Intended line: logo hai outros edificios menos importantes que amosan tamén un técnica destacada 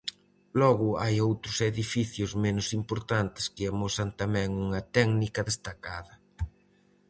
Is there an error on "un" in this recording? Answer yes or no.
yes